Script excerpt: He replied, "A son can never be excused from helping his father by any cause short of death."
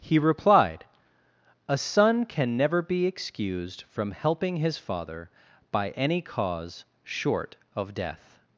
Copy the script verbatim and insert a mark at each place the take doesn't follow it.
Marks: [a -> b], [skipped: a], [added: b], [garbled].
He replied, "A son can never be excused from helping his father by any cause short of death."